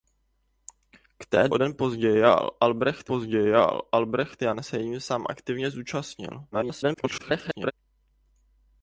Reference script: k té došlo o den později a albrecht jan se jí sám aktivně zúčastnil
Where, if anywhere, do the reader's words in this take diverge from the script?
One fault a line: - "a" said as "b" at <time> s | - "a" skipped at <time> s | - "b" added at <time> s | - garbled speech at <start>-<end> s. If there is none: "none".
- "došlo" skipped at 1.5 s
- "později a albrecht" added at 3.1 s
- garbled speech at 6.5-7.7 s